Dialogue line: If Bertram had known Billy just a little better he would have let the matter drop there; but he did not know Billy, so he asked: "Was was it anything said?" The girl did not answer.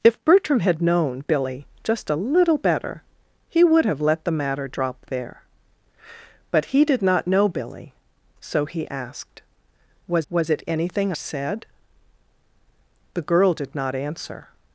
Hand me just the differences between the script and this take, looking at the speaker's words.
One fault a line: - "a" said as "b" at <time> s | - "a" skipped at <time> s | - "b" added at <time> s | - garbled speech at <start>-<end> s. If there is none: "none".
none